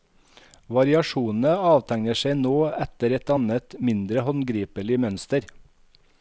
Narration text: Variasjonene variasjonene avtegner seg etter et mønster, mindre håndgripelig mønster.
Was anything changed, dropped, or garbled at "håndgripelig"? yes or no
no